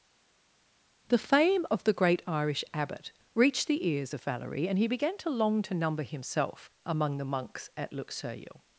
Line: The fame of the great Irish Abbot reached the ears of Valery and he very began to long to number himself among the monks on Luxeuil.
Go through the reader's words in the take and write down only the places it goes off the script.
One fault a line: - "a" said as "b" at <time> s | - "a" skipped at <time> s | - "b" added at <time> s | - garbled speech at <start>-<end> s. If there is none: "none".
- "very" skipped at 4.9 s
- "on" said as "at" at 7.8 s